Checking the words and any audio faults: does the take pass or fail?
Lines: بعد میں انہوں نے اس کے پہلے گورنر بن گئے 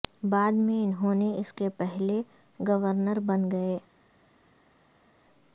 pass